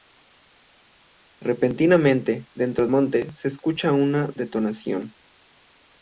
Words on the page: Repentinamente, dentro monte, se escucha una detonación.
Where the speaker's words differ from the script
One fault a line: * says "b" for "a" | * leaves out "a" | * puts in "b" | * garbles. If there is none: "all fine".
all fine